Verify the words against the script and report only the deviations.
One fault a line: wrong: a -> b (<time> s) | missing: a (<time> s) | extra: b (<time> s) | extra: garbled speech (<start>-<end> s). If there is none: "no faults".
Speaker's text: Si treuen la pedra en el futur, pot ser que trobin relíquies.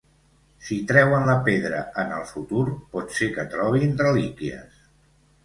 no faults